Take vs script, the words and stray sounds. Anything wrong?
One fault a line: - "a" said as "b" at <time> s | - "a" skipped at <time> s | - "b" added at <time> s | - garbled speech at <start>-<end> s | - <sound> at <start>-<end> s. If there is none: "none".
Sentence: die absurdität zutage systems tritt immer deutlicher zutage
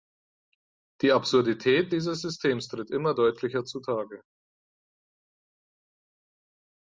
- "zutage" said as "dieses" at 1.9 s